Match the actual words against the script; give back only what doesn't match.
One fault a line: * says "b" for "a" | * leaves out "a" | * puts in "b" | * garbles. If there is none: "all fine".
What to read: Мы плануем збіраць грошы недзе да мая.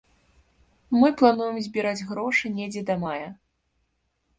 all fine